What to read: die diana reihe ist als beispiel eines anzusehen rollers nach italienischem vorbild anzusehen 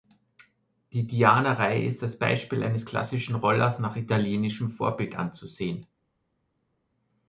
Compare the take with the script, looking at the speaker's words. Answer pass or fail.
fail